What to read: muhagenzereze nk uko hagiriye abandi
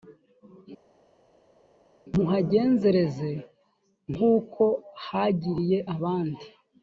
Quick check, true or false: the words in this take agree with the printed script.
true